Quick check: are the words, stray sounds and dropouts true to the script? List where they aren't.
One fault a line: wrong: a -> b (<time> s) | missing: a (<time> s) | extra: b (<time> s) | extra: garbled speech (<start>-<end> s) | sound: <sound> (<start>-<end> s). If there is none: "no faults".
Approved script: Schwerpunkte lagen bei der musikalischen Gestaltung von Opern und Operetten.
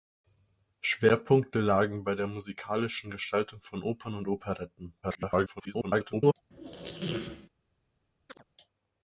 extra: garbled speech (5.0-6.3 s)
sound: squeak (6.5-7.5 s)
sound: chirp (8.3-8.4 s)